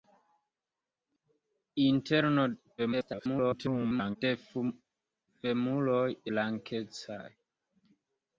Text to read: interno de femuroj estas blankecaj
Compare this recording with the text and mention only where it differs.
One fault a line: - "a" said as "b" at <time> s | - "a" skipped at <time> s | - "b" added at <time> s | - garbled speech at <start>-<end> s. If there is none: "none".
- garbled speech at 2.8-4.2 s
- "estas" skipped at 6.1 s